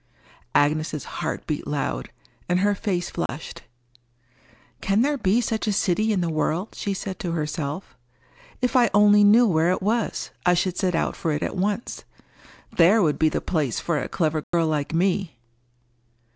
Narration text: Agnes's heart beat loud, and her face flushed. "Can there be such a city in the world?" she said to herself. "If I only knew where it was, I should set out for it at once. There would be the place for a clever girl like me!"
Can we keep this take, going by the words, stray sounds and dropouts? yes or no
no